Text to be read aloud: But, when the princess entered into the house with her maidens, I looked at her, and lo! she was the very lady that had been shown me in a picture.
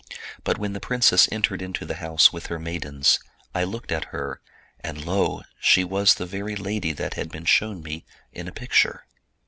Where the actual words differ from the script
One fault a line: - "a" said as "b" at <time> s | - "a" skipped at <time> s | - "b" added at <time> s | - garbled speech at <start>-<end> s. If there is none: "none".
none